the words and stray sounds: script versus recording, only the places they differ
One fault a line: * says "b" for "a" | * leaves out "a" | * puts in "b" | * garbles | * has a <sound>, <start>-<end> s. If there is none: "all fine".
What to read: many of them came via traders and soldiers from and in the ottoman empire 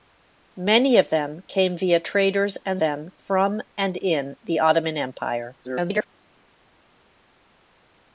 * says "them" for "soldiers"
* garbles